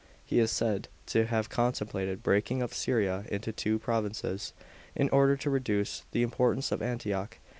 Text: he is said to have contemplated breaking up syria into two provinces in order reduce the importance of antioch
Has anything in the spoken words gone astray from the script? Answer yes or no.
yes